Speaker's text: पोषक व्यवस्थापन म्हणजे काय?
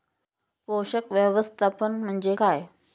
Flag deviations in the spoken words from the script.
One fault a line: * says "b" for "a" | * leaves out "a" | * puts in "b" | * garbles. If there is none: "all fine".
all fine